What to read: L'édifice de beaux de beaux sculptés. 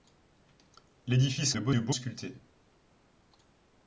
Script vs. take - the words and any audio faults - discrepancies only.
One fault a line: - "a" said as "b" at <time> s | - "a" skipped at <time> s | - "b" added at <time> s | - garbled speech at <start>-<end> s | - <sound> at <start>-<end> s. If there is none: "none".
none